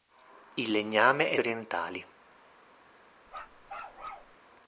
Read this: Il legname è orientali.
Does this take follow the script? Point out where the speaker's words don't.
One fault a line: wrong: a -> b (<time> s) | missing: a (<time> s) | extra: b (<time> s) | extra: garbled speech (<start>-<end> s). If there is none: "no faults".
no faults